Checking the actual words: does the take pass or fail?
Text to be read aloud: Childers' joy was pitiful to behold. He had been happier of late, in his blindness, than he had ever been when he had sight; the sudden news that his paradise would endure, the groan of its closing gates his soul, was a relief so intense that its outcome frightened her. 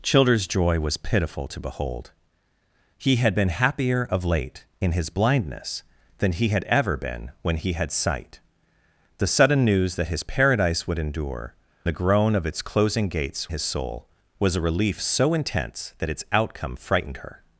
pass